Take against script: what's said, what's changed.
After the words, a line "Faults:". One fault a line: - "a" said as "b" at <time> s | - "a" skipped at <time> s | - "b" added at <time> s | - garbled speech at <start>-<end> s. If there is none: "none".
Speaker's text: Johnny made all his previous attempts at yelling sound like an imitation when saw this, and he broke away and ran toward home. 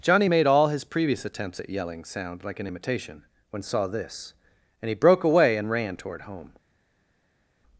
Johnny made all his previous attempts at yelling sound like an imitation when saw this, and he broke away and ran toward home.
Faults:
none